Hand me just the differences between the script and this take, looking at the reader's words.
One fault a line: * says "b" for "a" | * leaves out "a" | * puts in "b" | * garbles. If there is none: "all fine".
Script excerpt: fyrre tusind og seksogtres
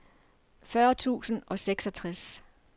all fine